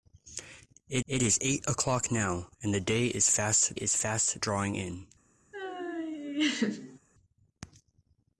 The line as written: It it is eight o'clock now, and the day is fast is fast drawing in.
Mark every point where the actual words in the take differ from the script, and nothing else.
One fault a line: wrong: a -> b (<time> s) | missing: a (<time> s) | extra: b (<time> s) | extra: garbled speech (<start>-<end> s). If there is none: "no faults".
no faults